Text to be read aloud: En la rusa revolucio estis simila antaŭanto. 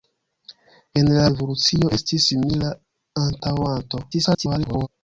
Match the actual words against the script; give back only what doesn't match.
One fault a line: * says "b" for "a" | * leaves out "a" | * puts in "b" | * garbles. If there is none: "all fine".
* leaves out "rusa"
* garbles